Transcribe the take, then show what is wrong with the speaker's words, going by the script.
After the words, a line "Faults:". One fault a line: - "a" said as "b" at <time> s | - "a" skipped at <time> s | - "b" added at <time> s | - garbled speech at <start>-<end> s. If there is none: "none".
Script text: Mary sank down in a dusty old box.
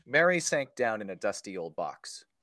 Mary sank down in a dusty old box.
Faults:
none